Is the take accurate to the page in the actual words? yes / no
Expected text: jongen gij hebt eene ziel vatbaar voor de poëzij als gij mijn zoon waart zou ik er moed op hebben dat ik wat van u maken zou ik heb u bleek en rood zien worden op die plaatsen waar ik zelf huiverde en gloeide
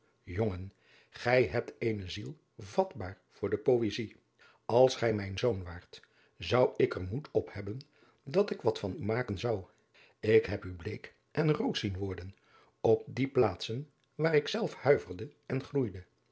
yes